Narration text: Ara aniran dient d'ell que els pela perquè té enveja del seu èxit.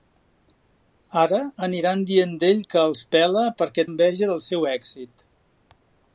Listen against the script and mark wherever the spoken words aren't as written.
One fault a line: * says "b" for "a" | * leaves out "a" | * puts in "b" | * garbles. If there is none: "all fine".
* leaves out "té"